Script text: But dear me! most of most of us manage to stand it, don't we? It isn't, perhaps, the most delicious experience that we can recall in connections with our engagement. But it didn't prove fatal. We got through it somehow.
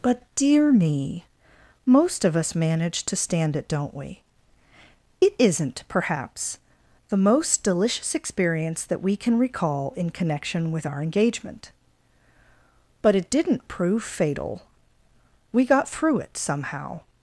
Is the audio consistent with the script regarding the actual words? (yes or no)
no